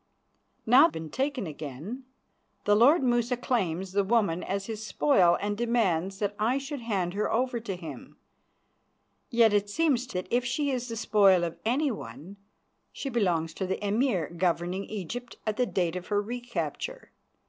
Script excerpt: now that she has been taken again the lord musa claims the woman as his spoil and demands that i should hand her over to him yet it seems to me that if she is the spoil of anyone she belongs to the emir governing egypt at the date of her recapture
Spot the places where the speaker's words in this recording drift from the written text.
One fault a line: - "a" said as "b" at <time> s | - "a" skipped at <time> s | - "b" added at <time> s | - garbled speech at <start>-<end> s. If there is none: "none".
- "that she has" skipped at 0.9 s
- "me" skipped at 10.2 s